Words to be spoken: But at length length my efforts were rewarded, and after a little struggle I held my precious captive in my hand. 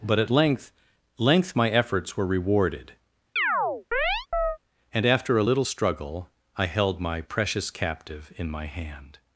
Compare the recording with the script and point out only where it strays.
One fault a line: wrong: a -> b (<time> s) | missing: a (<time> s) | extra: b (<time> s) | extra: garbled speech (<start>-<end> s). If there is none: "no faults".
no faults